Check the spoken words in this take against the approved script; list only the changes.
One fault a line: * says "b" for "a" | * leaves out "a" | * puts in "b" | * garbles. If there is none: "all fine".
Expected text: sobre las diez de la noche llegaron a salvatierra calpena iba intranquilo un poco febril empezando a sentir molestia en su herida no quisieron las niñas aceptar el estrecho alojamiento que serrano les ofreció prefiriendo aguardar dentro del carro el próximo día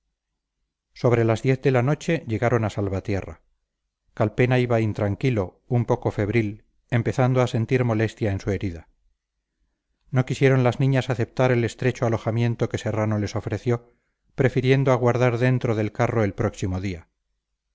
all fine